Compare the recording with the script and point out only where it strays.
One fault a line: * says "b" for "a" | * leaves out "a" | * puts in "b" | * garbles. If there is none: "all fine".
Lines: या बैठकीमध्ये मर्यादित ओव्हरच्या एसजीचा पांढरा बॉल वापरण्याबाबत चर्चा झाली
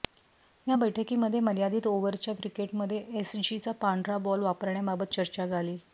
* puts in "क्रिकेटमध्ये"